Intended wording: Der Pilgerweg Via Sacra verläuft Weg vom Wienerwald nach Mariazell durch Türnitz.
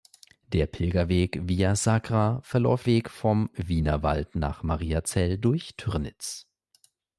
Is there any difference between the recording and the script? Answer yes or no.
no